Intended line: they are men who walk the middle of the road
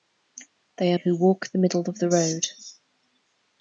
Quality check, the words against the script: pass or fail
fail